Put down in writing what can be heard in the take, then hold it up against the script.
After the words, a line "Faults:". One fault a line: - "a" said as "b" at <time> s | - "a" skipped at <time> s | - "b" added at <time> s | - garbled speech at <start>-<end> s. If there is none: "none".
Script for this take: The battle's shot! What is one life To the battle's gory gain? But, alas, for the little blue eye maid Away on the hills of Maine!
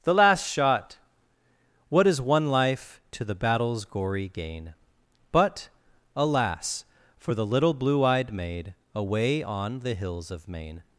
The last shot! What is one life To the battle's gory gain? But, alas, for the little blue eyed maid Away on the hills of Maine!
Faults:
- "battle's" said as "last" at 0.1 s
- "eye" said as "eyed" at 8.0 s